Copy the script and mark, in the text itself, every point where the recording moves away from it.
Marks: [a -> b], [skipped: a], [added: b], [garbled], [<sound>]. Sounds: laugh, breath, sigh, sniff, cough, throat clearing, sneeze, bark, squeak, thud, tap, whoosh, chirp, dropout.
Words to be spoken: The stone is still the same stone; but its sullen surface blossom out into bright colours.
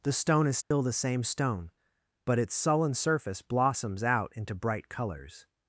The stone is still [dropout] the same stone; but its sullen surface [blossom -> blossoms] out into bright colours.